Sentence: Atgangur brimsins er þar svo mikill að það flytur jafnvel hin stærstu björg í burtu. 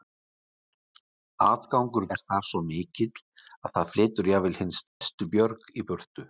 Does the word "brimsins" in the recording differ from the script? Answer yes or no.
yes